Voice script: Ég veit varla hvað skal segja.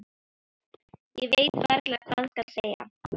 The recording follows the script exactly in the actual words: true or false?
true